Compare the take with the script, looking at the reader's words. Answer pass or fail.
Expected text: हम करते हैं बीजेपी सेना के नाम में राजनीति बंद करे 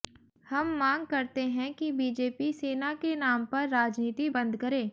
fail